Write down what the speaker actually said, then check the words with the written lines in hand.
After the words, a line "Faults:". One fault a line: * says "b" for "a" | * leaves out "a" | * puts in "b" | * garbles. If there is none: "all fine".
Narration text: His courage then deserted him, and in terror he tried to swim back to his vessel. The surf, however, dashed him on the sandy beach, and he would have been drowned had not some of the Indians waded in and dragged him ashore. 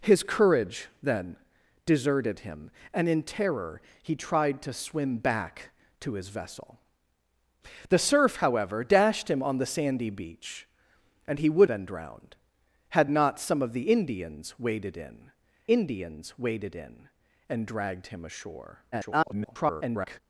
His courage then deserted him, and in terror he tried to swim back to his vessel. The surf, however, dashed him on the sandy beach, and he would been drowned had not some of the Indians waded in Indians waded in and dragged him ashore. [garbled]
Faults:
* leaves out "have"
* puts in "Indians waded in"
* garbles